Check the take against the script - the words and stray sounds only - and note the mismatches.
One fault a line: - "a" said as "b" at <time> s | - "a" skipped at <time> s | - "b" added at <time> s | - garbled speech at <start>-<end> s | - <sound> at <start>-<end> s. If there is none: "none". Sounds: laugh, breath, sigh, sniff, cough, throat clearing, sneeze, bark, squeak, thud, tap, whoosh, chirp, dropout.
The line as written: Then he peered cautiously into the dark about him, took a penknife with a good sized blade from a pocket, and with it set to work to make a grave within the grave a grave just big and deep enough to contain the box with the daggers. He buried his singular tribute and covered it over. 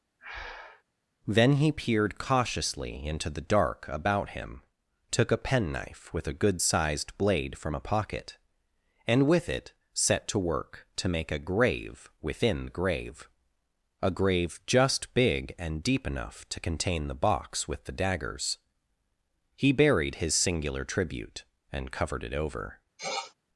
- breath at 0.2-0.8 s
- sniff at 23.0-23.3 s